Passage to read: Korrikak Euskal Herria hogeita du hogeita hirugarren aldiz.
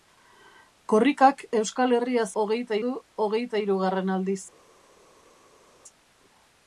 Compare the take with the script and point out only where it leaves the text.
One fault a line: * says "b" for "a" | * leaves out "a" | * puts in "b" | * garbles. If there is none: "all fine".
all fine